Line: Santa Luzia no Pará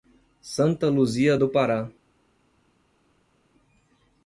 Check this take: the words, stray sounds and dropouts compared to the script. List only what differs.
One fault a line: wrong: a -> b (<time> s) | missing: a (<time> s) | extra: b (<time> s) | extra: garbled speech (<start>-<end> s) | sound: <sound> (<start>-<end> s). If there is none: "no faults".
wrong: no -> do (1.4 s)